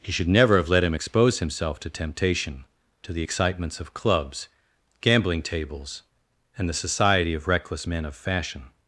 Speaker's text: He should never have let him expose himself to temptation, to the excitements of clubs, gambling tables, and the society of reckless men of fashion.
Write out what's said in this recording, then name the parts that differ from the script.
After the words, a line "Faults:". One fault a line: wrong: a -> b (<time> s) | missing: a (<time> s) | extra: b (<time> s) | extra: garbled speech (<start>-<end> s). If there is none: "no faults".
He should never have let him expose himself to temptation, to the excitements of clubs, gambling tables, and the society of reckless men of fashion.
Faults:
no faults